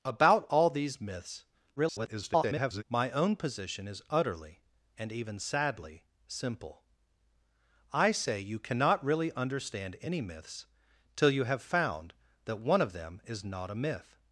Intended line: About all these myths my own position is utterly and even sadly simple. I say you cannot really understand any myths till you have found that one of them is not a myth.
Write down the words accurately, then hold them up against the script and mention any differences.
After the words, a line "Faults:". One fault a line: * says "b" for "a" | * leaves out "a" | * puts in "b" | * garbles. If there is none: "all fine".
About all these myths [garbled] my own position is utterly and even sadly simple. I say you cannot really understand any myths till you have found that one of them is not a myth.
Faults:
* garbles